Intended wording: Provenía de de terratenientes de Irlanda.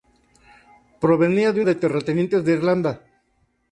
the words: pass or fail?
pass